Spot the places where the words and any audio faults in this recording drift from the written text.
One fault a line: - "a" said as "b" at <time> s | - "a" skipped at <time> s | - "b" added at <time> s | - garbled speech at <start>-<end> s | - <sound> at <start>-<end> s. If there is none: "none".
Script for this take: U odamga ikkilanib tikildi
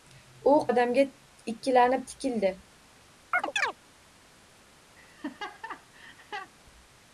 - chirp at 3.3-3.8 s
- laugh at 5.0-6.5 s